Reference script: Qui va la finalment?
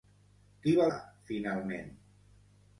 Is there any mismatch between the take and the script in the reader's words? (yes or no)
no